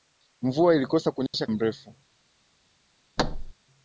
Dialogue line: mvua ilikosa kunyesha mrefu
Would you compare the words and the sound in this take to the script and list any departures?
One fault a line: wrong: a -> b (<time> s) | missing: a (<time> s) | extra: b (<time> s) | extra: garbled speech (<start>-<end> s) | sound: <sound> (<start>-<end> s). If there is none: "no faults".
sound: dropout (1.3-1.3 s)
sound: thud (3.2-3.5 s)